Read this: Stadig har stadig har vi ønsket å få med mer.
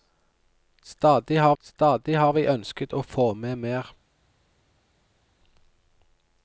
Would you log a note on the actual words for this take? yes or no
no